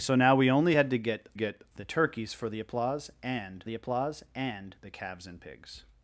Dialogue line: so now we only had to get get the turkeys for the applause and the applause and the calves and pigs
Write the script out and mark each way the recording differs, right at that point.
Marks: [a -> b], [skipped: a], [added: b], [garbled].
so now we only had to get get the turkeys for the applause and the applause and the calves and pigs